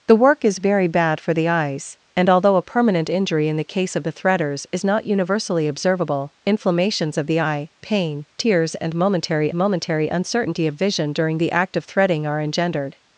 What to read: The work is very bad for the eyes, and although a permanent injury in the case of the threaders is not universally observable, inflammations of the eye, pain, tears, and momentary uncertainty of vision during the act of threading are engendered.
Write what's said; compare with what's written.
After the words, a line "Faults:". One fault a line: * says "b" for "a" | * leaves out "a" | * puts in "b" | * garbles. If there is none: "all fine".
The work is very bad for the eyes, and although a permanent injury in the case of the threaders is not universally observable, inflammations of the eye, pain, tears, and momentary momentary uncertainty of vision during the act of threading are engendered.
Faults:
* puts in "momentary"